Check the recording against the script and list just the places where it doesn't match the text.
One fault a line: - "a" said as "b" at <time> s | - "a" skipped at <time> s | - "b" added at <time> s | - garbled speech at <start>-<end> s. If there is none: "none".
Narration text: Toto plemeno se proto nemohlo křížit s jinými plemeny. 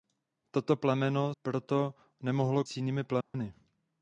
- "se" skipped at 1.4 s
- "křížit" skipped at 2.6 s